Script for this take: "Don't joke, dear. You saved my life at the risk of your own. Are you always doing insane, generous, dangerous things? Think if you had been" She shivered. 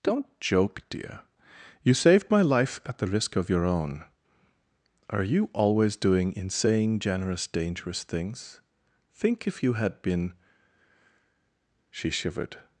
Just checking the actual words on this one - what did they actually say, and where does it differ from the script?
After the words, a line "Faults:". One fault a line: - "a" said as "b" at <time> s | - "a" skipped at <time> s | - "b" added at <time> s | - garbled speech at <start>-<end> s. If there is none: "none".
"Don't joke, dear. You saved my life at the risk of your own. Are you always doing insane, generous, dangerous things? Think if you had been" She shivered.
Faults:
none